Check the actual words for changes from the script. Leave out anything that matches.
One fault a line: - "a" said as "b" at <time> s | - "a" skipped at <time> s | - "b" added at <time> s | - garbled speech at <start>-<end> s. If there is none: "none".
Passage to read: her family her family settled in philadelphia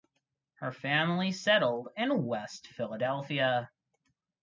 - "her family" skipped at 1.3 s
- "west" added at 2.2 s